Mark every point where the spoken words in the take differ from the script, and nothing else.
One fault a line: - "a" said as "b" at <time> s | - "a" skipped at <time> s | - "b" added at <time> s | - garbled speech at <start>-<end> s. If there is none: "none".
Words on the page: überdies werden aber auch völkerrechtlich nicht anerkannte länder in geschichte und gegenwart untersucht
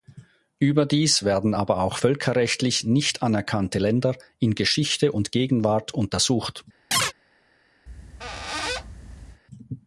none